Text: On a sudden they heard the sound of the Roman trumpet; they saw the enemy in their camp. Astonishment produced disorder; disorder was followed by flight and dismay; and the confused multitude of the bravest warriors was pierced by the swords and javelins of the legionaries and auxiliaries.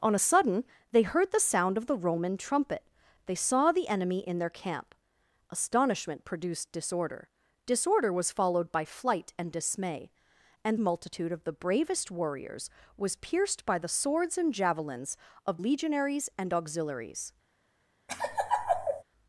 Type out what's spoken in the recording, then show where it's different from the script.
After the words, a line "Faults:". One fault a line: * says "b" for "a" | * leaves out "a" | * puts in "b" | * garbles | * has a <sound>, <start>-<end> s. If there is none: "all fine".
On a sudden they heard the sound of the Roman trumpet; they saw the enemy in their camp. Astonishment produced disorder; disorder was followed by flight and dismay; and multitude of the bravest warriors was pierced by the swords and javelins of legionaries and auxiliaries.
Faults:
* leaves out "the confused"
* leaves out "the"
* has a laugh, 18.1-19.0 s